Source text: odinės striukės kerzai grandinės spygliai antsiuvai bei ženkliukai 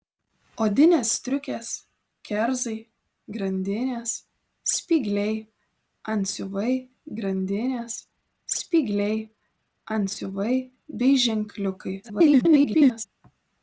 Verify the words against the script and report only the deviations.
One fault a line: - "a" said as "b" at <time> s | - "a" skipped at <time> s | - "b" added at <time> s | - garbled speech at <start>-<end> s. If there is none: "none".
- "grandinės spygliai antsiuvai" added at 7.2 s
- garbled speech at 12.0-13.1 s